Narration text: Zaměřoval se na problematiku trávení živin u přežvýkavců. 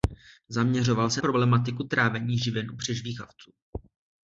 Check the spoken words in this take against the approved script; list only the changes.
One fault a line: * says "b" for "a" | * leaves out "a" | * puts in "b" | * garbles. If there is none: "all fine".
* leaves out "na"